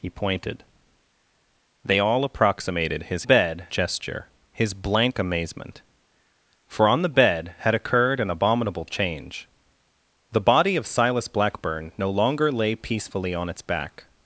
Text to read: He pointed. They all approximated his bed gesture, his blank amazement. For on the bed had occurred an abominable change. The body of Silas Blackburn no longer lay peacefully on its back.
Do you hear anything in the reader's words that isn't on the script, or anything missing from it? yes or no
no